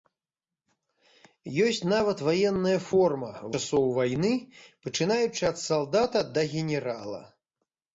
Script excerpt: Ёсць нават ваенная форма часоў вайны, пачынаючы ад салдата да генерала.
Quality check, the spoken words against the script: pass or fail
pass